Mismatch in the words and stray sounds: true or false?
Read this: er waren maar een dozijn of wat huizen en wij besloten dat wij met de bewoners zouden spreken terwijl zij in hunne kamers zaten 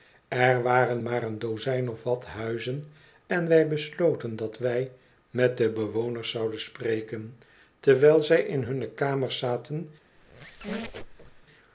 true